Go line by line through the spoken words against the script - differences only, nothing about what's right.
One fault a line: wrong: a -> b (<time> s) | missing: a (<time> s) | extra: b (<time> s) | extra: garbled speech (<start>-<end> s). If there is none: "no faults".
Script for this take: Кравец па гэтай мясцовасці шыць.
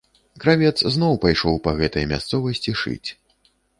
extra: зноў пайшоў (0.9 s)